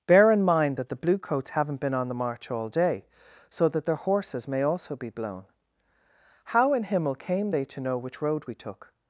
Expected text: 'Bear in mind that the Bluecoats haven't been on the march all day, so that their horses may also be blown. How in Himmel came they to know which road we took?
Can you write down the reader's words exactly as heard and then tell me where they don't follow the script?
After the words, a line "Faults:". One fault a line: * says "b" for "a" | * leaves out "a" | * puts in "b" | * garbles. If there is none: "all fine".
'Bear in mind that the Bluecoats haven't been on the march all day, so that their horses may also be blown. How in Himmel came they to know which road we took?
Faults:
all fine